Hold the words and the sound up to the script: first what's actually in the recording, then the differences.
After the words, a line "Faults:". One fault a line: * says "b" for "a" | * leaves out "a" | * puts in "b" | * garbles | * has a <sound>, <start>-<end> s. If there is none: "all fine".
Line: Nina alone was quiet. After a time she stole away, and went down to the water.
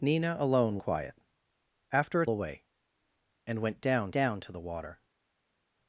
Nina alone quiet. After a away, and went down down to the water.
Faults:
* leaves out "was"
* leaves out "time she stole"
* puts in "down"